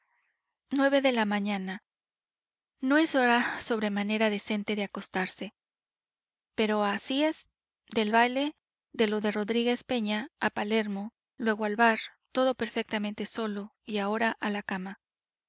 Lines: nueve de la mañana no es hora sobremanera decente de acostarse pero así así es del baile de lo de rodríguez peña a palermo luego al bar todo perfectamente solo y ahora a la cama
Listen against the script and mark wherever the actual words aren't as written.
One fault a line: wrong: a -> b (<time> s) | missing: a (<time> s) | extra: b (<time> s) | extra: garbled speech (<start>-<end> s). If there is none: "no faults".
missing: así (7.2 s)